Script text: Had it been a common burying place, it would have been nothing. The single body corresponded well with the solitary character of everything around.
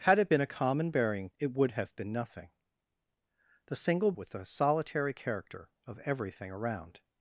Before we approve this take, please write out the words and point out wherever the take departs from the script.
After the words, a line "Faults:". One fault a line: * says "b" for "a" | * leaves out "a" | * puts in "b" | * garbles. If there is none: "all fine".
Had it been a common burying it would have been nothing. The single with the solitary character of everything around.
Faults:
* leaves out "place"
* leaves out "body corresponded well"